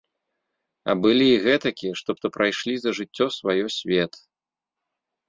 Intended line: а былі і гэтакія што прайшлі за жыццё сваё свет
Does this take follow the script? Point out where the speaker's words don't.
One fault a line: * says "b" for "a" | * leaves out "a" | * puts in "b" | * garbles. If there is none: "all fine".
* puts in "што"